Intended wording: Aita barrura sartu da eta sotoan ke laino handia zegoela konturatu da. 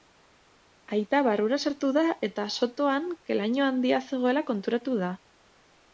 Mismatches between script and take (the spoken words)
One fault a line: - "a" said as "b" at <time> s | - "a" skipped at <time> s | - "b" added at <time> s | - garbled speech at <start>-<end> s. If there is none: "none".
none